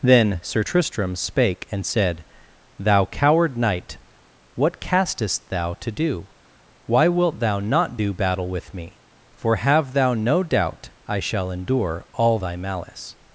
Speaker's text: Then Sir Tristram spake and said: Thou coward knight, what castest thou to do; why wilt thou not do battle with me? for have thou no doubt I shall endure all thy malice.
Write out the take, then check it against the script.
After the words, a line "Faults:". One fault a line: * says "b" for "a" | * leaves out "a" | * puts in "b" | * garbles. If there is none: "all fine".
Then Sir Tristram spake and said: Thou coward knight, what castest thou to do; why wilt thou not do battle with me? for have thou no doubt I shall endure all thy malice.
Faults:
all fine